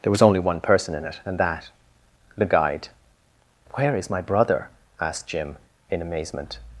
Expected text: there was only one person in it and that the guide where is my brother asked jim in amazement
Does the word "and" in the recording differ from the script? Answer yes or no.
no